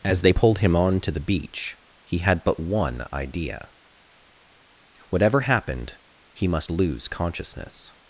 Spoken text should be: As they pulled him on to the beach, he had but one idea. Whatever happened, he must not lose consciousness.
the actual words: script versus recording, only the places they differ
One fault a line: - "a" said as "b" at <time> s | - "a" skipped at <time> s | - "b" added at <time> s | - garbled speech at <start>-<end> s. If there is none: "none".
- "not" skipped at 6.7 s